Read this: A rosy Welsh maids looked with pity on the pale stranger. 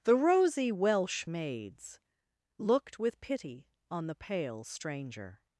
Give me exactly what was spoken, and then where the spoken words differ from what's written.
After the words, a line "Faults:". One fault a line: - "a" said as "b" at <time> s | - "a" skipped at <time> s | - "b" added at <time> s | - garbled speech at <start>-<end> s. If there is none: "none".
The rosy Welsh maids looked with pity on the pale stranger.
Faults:
- "A" said as "The" at 0.0 s